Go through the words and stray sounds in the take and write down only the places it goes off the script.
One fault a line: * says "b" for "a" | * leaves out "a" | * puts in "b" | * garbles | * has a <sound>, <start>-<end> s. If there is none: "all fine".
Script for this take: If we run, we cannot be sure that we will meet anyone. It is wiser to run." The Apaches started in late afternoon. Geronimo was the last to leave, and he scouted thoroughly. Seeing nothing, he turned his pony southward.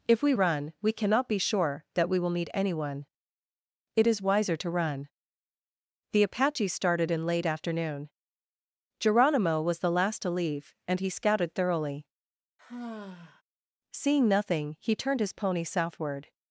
* has a sigh, 12.6-13.4 s